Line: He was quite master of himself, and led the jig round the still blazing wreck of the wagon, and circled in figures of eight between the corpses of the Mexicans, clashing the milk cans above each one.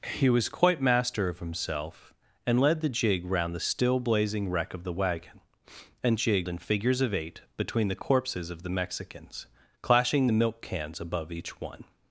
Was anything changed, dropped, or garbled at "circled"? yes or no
yes